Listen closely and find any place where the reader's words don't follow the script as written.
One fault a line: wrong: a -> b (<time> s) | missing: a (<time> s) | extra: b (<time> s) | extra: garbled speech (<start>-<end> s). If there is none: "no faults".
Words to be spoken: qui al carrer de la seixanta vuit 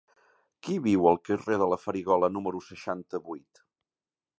extra: viu (0.9 s)
extra: farigola número (1.9 s)